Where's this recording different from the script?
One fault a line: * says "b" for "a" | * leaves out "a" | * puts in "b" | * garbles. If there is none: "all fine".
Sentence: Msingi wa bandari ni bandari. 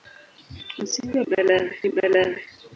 all fine